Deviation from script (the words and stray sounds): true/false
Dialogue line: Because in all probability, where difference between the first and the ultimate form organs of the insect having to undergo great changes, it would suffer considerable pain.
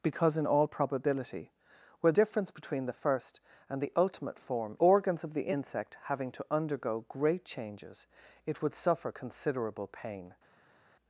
false